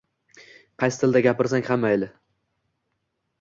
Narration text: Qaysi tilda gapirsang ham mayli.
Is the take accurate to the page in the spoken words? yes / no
yes